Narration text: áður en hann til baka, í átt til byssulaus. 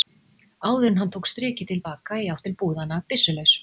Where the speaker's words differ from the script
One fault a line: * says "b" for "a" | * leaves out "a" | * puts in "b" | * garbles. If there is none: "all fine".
* puts in "tók strikið"
* puts in "búðanna"